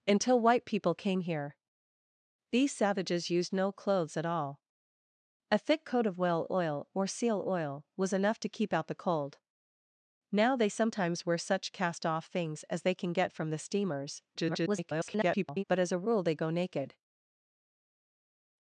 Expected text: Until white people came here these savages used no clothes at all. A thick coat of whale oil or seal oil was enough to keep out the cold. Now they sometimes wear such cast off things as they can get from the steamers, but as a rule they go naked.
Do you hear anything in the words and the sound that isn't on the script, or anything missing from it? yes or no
yes